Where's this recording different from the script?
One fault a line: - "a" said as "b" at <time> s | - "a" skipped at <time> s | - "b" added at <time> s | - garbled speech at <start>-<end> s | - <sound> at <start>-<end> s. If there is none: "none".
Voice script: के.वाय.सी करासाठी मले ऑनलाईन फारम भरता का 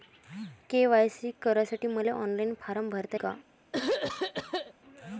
- throat clearing at 3.7-4.7 s